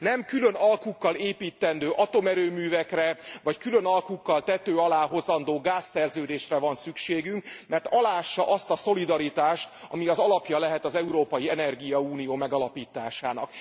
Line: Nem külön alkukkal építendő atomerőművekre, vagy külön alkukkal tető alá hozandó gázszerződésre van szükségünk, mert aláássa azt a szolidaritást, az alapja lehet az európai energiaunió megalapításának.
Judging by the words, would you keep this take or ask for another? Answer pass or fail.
fail